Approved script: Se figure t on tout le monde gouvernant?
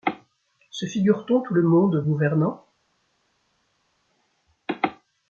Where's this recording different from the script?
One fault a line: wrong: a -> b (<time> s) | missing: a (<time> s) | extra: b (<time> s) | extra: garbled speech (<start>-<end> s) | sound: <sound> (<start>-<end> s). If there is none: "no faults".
no faults